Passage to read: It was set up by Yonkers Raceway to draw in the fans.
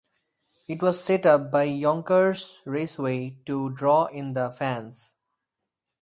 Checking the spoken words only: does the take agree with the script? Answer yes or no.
yes